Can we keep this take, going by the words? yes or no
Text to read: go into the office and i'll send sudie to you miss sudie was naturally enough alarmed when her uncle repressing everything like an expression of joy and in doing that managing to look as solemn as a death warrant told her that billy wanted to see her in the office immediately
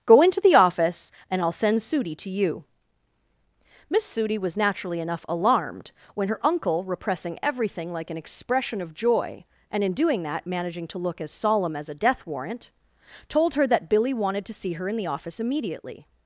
yes